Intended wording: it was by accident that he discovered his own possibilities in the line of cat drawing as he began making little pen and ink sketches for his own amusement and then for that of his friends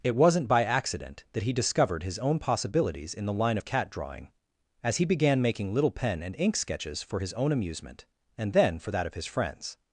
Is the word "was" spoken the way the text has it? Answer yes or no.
no